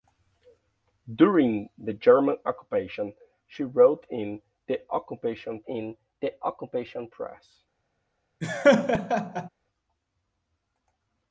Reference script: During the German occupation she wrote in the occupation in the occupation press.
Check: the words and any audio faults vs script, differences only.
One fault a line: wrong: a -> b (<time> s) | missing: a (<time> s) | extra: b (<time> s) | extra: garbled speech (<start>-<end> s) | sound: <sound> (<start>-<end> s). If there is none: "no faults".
sound: laugh (8.4-9.5 s)